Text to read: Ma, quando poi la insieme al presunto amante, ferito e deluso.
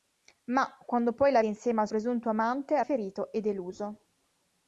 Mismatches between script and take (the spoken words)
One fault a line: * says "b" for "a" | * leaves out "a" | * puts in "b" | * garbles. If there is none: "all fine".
all fine